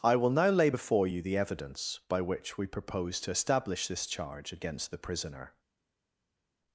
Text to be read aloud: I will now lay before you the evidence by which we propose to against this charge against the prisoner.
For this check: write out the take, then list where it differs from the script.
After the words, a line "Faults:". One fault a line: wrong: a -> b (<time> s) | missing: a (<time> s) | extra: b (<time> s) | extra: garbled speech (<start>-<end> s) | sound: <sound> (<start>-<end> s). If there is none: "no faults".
I will now lay before you the evidence by which we propose to establish this charge against the prisoner.
Faults:
wrong: against -> establish (3.3 s)